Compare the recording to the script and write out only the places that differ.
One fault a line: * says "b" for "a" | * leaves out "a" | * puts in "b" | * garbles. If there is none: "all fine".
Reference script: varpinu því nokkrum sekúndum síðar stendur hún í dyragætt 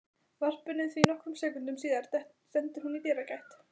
all fine